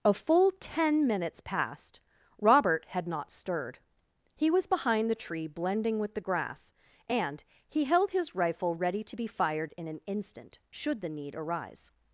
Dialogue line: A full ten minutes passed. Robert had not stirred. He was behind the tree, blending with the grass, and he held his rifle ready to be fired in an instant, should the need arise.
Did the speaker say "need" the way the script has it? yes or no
yes